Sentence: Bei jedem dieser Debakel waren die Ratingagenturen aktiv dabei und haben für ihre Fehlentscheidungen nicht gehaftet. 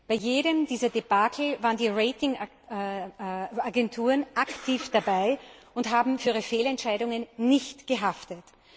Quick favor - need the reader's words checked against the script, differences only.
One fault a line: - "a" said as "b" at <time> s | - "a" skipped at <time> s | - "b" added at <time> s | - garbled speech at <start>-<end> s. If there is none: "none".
none